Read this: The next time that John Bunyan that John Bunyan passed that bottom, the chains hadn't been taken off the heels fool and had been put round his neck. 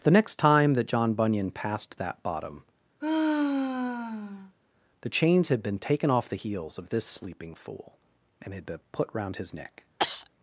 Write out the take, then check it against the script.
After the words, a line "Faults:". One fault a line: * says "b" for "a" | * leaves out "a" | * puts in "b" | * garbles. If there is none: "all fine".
The next time that John Bunyan passed that bottom, the chains had been taken off the heels of this sleeping fool and had been put round his neck.
Faults:
* leaves out "that John Bunyan"
* says "had" for "hadn't"
* puts in "of this sleeping"